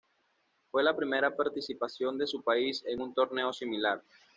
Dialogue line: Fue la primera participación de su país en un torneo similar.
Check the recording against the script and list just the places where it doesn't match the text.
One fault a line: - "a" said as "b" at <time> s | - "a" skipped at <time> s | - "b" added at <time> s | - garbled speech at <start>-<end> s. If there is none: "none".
none